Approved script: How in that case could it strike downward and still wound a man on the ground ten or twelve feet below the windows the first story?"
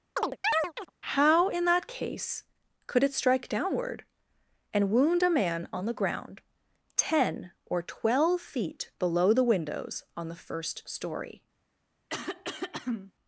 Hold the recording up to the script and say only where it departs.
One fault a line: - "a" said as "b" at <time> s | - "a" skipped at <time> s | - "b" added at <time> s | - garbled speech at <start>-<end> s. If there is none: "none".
- "still" skipped at 4.9 s
- "on" added at 10.2 s